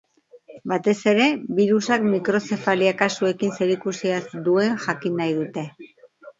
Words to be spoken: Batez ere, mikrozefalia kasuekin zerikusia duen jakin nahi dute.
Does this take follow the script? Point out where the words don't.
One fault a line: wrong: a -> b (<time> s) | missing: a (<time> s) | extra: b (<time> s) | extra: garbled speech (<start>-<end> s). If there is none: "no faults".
extra: birusak (1.6 s)